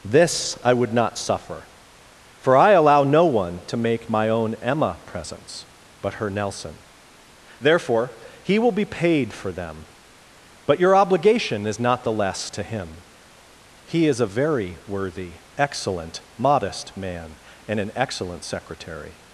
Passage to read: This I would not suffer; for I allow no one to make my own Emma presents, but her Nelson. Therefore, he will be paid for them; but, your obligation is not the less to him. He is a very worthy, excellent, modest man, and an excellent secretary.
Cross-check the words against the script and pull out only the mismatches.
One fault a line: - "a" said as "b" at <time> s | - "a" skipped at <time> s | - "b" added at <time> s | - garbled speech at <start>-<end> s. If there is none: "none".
none